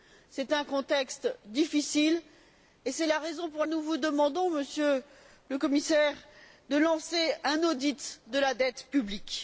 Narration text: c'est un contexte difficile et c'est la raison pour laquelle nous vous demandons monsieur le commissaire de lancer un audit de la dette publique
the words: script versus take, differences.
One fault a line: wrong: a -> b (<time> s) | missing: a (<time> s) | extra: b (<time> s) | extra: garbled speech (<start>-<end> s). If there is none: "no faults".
missing: laquelle (3.6 s)